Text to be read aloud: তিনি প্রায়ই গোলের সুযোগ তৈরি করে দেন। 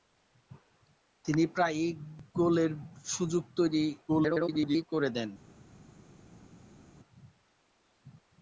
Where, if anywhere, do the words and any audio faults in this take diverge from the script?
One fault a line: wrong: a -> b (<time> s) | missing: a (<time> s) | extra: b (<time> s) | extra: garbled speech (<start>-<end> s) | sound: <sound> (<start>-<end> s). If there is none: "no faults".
extra: garbled speech (4.1-4.8 s)